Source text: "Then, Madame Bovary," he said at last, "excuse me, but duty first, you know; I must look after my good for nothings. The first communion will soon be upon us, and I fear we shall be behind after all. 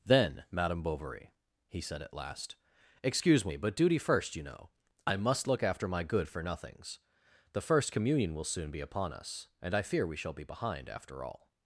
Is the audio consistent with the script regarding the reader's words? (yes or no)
yes